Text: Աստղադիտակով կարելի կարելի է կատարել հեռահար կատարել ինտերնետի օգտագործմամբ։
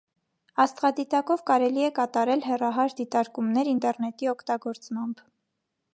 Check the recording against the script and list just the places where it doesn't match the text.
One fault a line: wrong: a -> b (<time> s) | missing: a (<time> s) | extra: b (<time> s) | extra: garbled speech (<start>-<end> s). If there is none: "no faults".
missing: կարելի (1.9 s)
wrong: կատարել -> դիտարկումներ (3.0 s)